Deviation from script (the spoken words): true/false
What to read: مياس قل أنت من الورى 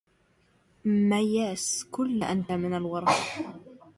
false